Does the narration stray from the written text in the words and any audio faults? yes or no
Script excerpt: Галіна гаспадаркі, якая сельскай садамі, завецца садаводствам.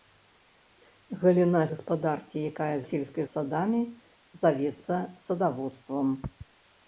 no